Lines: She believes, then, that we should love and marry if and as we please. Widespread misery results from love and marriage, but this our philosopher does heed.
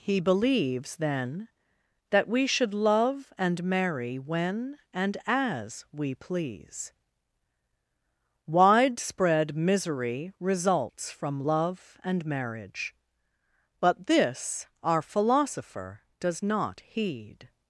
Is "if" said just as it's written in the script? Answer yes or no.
no